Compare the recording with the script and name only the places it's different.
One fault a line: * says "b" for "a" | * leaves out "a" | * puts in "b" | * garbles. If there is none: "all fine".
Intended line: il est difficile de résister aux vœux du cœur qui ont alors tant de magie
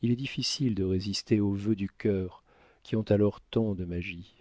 all fine